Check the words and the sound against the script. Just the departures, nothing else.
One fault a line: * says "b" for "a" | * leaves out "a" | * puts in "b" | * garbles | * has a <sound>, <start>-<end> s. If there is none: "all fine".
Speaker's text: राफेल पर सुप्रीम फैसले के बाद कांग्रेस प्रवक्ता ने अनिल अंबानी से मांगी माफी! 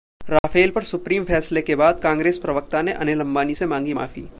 * has a dropout, 0.4-0.4 s